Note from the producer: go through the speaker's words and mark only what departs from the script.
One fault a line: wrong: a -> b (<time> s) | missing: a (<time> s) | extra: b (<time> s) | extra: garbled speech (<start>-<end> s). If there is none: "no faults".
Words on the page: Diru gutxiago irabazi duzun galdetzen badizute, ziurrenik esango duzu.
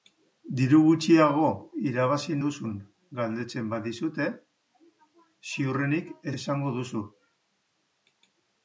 no faults